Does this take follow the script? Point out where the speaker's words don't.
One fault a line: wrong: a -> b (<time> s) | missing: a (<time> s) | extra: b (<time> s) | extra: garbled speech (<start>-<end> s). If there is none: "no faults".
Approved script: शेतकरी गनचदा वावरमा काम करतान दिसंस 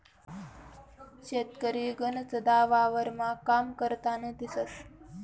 no faults